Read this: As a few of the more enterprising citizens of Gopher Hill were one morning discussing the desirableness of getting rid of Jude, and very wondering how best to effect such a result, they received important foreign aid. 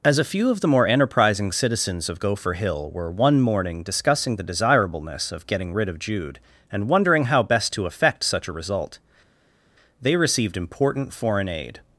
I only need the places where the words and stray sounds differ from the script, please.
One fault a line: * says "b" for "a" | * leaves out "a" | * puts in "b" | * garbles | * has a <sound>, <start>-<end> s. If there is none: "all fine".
* leaves out "very"